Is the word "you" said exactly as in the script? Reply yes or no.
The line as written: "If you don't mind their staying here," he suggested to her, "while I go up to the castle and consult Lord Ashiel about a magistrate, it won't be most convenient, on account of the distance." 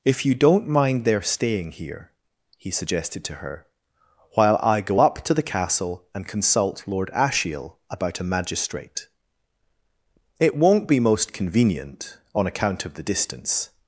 yes